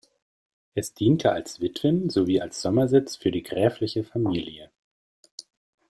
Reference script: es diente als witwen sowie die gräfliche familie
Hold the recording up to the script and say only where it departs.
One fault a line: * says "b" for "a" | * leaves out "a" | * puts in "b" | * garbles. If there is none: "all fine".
* puts in "als sommersitz für"